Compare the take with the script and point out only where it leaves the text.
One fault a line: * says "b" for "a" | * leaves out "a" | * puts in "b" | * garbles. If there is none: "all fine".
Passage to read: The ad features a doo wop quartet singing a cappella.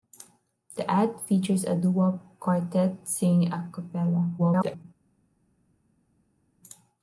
* garbles